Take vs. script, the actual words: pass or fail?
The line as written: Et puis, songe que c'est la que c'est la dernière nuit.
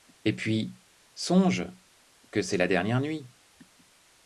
fail